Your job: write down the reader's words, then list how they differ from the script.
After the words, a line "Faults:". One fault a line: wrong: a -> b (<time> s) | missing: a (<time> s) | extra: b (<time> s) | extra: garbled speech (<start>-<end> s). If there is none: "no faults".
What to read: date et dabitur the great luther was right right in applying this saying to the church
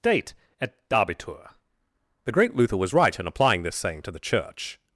date et dabitur the great luther was right in applying this saying to the church
Faults:
missing: right (3.2 s)